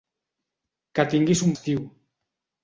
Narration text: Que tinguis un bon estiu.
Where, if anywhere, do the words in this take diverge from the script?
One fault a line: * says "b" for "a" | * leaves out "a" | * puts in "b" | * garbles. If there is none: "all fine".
* leaves out "bon"